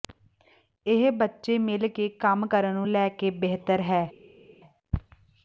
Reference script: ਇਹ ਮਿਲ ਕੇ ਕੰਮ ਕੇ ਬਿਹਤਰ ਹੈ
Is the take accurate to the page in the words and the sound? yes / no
no